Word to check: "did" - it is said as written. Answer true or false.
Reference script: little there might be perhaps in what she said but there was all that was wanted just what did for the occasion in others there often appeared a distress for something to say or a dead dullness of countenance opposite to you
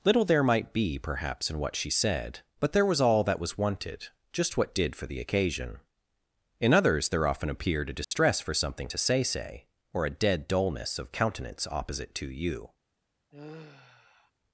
true